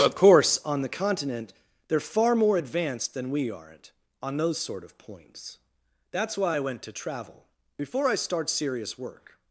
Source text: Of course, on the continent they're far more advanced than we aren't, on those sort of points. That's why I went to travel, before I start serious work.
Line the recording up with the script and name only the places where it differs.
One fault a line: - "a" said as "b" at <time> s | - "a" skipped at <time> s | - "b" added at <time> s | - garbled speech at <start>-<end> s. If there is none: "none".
none